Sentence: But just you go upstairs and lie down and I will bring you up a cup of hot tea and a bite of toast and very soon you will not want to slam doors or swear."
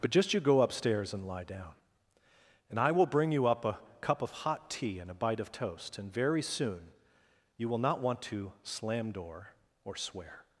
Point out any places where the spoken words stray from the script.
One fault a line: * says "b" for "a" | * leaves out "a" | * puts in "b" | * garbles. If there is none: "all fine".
* says "door" for "doors"